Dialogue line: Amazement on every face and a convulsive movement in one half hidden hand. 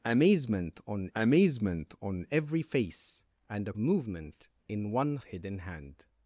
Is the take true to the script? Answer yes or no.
no